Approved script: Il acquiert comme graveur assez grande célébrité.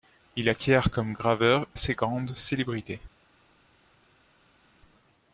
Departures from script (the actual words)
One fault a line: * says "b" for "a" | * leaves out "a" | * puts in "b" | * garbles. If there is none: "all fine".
all fine